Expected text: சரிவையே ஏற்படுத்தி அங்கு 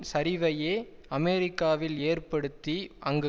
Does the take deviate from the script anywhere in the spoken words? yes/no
yes